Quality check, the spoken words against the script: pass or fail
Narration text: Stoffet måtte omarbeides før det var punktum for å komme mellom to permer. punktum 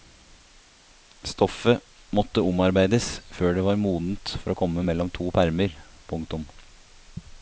fail